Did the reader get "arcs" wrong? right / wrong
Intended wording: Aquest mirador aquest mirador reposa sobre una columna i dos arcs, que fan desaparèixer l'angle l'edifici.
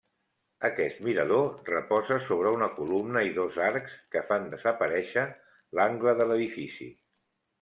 right